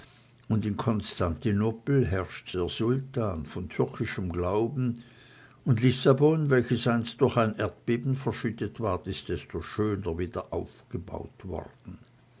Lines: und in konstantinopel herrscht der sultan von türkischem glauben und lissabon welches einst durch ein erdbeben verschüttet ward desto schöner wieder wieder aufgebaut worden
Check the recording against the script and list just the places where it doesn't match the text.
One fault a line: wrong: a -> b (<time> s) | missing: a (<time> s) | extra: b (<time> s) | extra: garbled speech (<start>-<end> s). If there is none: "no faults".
extra: ist (9.1 s)
missing: wieder (10.5 s)